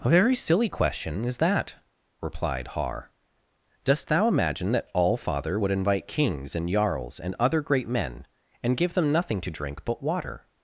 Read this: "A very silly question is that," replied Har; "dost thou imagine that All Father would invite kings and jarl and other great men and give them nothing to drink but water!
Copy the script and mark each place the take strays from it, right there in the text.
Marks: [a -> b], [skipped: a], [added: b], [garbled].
"A very silly question is that," replied Har; "dost thou imagine that All Father would invite kings and [jarl -> jarls] and other great men and give them nothing to drink but water!